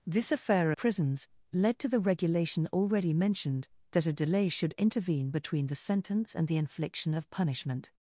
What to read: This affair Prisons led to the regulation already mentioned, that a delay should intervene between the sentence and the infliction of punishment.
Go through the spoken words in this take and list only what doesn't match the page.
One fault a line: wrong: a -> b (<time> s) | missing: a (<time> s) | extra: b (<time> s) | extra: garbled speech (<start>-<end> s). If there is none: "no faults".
no faults